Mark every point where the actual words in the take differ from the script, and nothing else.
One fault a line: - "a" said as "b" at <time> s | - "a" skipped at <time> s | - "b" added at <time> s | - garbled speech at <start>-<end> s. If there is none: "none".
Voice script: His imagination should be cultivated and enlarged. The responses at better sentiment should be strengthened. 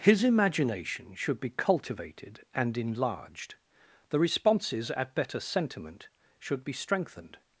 none